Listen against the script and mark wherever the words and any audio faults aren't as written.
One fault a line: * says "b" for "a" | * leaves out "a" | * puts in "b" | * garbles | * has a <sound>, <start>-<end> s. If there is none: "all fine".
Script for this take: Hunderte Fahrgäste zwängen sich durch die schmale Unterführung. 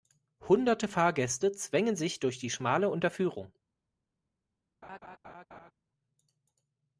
* has a laugh, 4.8-5.7 s